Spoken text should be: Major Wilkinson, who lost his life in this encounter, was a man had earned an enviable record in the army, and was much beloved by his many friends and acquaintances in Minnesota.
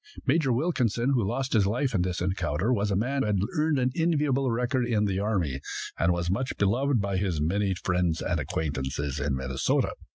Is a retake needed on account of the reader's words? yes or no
no